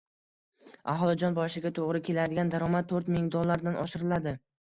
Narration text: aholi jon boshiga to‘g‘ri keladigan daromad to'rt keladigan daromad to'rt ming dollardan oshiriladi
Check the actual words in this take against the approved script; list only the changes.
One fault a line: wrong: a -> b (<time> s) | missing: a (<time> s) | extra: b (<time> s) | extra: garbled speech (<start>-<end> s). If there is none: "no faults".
missing: keladigan daromad to'rt (3.1 s)